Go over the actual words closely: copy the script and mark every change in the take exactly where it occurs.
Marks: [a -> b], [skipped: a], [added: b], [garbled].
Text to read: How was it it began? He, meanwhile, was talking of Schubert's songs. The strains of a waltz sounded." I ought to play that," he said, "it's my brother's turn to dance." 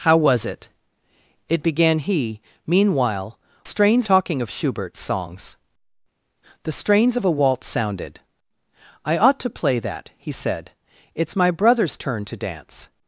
How was it it began? He, meanwhile, [was -> strains] talking of Schubert's songs. The strains of a waltz sounded." I ought to play that," he said, "it's my brother's turn to dance."